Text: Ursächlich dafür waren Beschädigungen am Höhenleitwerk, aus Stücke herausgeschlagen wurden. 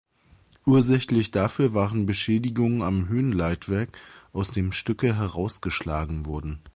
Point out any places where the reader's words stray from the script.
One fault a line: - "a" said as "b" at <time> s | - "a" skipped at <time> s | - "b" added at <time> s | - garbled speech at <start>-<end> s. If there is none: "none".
- "dem" added at 4.5 s